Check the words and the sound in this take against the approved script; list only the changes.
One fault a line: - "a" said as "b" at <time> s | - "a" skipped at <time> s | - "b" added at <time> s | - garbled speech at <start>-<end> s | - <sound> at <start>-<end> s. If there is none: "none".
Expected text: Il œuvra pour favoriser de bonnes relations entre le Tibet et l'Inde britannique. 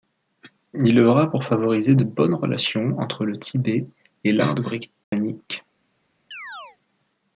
- dropout at 5.0-5.1 s
- chirp at 6.3-6.8 s